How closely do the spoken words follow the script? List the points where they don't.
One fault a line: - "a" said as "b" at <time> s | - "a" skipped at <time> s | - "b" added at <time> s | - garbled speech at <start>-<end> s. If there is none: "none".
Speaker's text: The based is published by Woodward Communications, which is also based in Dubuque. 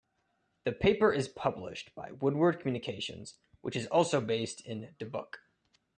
- "based" said as "paper" at 0.7 s